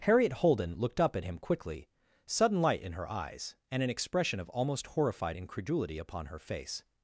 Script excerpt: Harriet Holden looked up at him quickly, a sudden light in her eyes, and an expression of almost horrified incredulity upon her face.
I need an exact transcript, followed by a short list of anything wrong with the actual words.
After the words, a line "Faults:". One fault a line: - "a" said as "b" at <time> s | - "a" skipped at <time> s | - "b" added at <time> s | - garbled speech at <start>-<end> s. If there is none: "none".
Harriet Holden looked up at him quickly, sudden light in her eyes, and an expression of almost horrified incredulity upon her face.
Faults:
- "a" skipped at 1.9 s